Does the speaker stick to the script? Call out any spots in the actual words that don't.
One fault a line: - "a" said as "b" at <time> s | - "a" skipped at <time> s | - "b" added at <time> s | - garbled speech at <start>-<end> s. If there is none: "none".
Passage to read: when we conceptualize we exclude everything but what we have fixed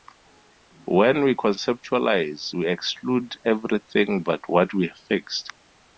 none